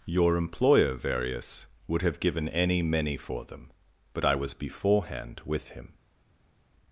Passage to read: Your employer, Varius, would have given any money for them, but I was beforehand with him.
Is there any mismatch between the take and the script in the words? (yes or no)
yes